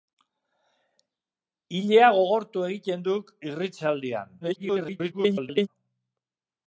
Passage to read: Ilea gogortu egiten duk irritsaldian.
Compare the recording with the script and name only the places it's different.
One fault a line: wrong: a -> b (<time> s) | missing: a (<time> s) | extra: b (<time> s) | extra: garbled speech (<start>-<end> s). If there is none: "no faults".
extra: garbled speech (4.4-5.7 s)